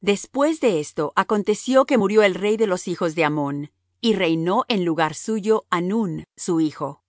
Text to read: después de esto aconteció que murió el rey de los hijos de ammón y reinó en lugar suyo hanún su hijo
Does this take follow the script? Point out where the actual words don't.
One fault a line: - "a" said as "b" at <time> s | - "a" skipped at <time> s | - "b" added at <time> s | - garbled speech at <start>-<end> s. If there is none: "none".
none